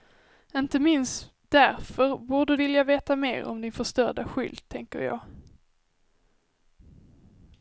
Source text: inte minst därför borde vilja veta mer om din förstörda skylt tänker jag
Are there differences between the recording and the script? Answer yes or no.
no